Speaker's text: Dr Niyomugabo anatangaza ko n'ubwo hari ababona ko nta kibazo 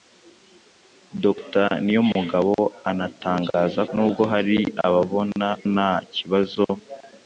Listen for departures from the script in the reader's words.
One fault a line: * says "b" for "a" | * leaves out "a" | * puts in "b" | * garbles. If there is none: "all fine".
* leaves out "ko"
* leaves out "ko"